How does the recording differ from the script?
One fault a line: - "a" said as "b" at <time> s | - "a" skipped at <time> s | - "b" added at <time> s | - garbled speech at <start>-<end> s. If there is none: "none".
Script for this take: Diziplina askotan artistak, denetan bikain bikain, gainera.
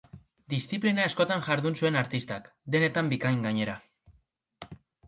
- "jardun zuen" added at 1.5 s
- "bikain" skipped at 3.5 s